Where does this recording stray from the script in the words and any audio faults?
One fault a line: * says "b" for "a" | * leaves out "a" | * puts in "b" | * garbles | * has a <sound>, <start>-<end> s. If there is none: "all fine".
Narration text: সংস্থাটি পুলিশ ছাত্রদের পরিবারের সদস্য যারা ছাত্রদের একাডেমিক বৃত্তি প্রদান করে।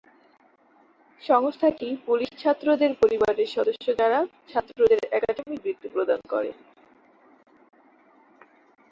all fine